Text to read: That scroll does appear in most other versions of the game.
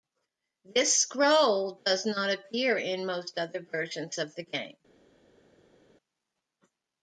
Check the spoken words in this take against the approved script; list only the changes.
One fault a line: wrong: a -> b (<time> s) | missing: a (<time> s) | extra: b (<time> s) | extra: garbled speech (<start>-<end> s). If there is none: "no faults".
wrong: That -> This (0.7 s)
extra: not (2.1 s)